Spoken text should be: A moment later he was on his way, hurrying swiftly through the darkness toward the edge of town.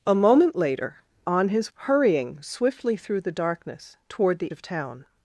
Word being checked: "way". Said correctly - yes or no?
no